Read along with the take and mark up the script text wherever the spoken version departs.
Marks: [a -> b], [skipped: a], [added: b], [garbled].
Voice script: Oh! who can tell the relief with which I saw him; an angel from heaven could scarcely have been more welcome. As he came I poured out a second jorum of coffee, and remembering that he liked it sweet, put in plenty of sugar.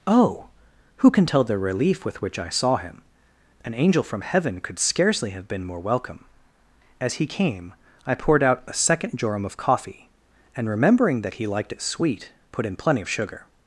Oh! who can tell the relief with which I saw him; an angel from heaven could scarcely have been more welcome. As he came I poured out a second jorum of coffee, and remembering that he liked it sweet, put in plenty of sugar.